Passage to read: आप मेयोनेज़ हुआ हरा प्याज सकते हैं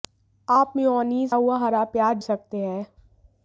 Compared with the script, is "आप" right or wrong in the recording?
right